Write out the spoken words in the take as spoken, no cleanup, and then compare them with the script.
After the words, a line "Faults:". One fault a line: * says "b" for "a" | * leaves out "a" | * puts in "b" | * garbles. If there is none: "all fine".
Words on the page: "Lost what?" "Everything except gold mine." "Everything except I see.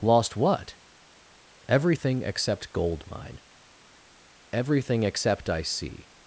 "Lost what?" "Everything except gold mine." "Everything except I see.
Faults:
all fine